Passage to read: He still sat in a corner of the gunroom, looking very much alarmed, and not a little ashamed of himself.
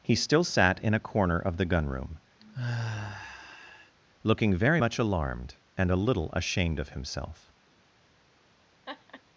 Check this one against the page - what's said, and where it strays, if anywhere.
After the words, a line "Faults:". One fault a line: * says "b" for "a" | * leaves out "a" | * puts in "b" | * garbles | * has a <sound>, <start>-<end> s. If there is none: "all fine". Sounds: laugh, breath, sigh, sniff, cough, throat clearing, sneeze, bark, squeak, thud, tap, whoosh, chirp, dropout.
He still sat in a corner of the gunroom, looking very much alarmed, and a little ashamed of himself.
Faults:
* has a sigh, 2.4-4.0 s
* leaves out "not"
* has a laugh, 8.9-9.2 s